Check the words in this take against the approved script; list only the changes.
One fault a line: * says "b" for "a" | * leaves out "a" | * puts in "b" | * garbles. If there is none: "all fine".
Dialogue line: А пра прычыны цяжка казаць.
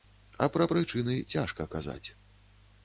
all fine